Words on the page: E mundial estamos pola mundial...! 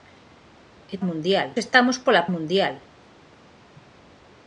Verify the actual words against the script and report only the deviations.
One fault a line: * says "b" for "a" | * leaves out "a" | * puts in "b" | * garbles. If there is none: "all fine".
all fine